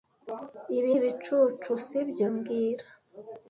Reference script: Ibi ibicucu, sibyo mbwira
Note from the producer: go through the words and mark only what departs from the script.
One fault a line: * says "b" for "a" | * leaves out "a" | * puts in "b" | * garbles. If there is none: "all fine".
all fine